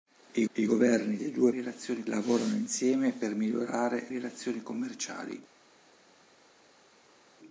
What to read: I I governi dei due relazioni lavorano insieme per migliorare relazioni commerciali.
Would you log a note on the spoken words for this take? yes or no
no